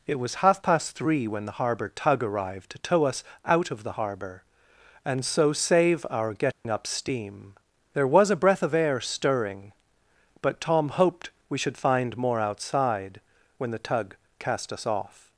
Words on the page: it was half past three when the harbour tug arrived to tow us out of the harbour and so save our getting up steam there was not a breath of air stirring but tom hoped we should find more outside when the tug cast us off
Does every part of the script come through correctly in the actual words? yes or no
no